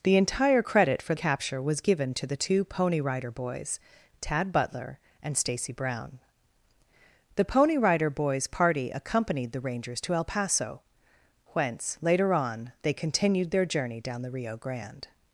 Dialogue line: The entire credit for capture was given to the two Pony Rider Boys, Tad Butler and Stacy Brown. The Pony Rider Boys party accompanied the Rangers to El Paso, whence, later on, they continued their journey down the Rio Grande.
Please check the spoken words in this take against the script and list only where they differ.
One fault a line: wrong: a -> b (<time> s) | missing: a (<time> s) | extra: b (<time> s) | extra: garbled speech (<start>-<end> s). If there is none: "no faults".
no faults